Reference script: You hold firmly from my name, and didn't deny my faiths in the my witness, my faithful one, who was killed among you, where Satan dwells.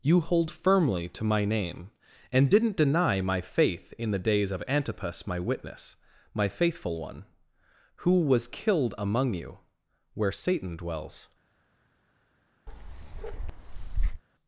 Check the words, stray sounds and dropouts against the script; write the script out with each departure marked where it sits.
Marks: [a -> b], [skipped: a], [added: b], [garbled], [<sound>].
You hold firmly [from -> to] my name, and didn't deny my [faiths -> faith] in the [added: days of Antipas] my witness, my faithful one, who was killed among you, where Satan dwells. [bark]